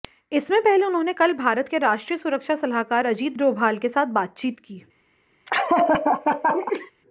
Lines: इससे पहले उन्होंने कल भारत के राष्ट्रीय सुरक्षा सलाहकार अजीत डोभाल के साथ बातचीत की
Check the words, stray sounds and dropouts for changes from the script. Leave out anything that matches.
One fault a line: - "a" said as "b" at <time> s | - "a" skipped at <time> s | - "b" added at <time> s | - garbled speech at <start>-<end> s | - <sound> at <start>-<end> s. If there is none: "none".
- laugh at 5.5-6.9 s